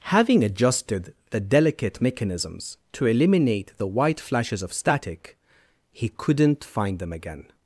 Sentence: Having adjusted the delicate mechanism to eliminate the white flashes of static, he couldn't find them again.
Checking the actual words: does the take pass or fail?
fail